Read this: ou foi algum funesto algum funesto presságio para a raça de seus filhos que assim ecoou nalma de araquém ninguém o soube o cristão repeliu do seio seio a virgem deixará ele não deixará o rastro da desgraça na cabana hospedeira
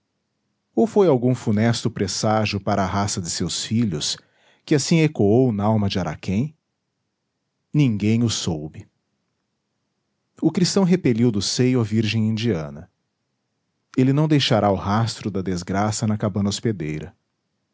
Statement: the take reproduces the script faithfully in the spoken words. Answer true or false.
false